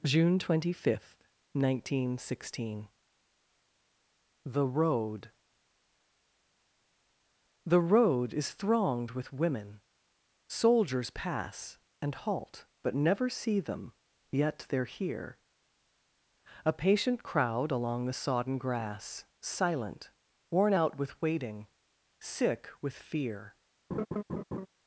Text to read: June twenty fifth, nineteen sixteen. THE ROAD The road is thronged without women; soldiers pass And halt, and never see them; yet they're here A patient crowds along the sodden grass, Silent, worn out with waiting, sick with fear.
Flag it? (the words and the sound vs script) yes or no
yes